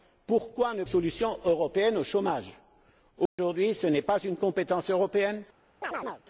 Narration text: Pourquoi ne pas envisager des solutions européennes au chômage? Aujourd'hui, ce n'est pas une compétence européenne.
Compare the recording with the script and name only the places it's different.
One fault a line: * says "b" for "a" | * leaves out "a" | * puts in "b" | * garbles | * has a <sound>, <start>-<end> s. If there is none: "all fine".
* leaves out "pas envisager des"
* has a dropout, 3.3-3.4 s
* has a chirp, 5.8-6.2 s